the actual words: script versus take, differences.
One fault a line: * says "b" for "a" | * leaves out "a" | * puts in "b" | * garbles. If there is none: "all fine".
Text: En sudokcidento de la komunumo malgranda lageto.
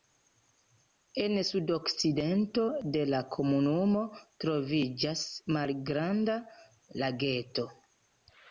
* puts in "troviĝas"